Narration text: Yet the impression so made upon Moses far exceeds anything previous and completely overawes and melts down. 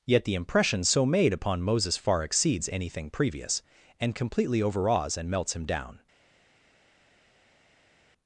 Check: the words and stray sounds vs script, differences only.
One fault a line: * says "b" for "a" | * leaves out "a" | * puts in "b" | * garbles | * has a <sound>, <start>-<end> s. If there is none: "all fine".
* puts in "him"